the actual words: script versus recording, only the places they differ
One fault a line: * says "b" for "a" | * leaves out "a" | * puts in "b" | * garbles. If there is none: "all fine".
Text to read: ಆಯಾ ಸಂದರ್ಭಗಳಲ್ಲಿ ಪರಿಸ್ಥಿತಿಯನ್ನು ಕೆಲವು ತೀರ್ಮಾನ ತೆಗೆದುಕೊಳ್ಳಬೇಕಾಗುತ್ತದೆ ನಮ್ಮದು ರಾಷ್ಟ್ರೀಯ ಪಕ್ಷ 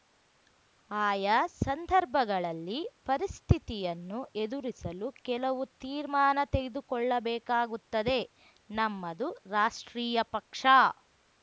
* puts in "ಎದುರಿಸಲು"